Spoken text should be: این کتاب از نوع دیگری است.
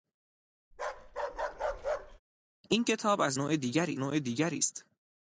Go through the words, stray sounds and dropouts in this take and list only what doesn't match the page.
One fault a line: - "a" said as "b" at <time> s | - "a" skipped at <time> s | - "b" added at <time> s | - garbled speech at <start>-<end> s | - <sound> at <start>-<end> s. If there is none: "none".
- bark at 0.7-2.2 s
- "نوع دیگری" added at 4.0 s